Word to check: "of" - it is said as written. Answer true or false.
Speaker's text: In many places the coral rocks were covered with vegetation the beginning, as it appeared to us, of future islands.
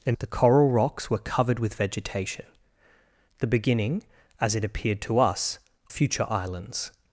false